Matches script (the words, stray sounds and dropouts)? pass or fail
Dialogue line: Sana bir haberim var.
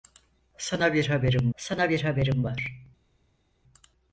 fail